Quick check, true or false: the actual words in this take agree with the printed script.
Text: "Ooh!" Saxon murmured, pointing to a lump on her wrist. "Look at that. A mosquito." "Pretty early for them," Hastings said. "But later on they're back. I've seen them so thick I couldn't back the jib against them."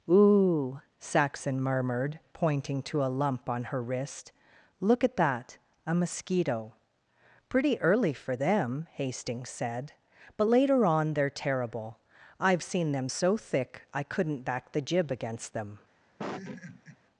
false